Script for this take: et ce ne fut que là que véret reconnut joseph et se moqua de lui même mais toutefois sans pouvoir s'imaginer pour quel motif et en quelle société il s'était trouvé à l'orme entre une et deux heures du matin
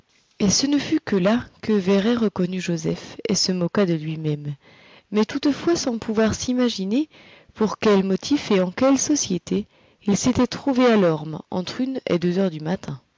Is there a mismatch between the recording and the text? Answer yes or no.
no